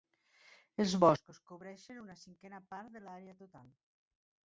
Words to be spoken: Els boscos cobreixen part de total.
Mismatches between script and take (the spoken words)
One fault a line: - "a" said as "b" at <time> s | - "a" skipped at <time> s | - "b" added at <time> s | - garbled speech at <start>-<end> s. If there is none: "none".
- "una cinquena" added at 2.0 s
- "l'àrea" added at 3.1 s